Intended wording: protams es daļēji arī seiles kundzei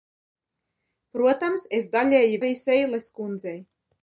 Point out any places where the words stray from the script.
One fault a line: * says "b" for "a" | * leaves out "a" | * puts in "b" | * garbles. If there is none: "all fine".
all fine